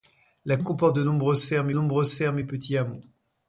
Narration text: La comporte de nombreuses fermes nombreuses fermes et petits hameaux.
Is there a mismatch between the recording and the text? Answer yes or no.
no